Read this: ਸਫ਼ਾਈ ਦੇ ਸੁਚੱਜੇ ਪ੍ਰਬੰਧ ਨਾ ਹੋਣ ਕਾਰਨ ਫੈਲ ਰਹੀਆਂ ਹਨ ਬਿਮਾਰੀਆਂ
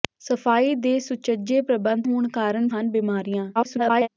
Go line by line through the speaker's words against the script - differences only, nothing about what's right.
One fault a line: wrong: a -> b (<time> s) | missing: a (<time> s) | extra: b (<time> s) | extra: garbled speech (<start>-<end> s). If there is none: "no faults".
missing: ਨਾ (2.1 s)
missing: ਫੈਲ ਰਹੀਆਂ (2.7 s)
extra: garbled speech (3.5-4.1 s)